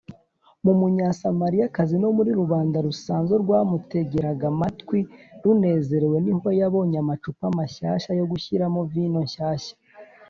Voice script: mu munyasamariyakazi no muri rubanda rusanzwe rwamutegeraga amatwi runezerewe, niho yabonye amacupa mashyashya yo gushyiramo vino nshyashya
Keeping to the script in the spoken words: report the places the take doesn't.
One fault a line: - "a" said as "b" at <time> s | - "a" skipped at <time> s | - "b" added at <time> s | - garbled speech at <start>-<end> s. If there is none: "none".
none